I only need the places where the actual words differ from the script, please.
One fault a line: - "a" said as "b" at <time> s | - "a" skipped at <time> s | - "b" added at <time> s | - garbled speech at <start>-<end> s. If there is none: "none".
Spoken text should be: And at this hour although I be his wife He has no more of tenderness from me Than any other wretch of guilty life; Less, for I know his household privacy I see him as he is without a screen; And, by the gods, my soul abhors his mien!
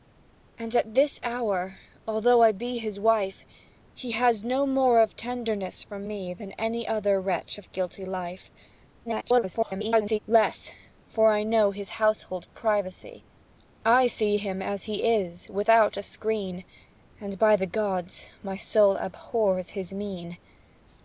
- garbled speech at 9.1-10.2 s